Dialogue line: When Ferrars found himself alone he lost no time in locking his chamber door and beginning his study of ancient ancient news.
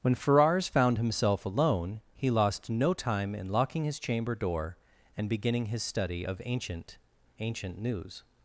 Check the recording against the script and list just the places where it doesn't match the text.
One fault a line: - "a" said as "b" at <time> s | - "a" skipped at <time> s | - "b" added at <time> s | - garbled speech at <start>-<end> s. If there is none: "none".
none